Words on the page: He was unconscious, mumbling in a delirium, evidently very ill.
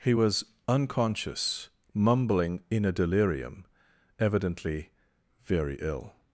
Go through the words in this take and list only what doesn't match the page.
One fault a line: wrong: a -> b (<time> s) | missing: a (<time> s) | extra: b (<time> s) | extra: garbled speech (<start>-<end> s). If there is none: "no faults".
no faults